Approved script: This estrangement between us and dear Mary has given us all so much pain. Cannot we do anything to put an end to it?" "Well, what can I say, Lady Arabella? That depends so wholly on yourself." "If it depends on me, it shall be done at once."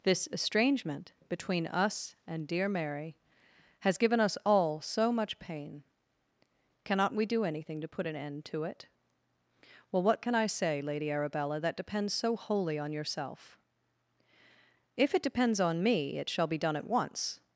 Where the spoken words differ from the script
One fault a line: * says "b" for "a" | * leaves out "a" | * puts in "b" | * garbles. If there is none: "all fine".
all fine